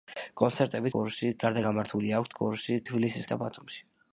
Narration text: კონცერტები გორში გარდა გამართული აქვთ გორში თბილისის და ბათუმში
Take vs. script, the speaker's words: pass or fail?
pass